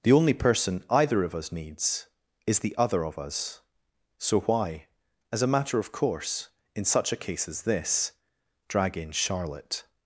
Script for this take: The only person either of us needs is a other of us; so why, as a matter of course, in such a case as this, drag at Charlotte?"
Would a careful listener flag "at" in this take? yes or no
yes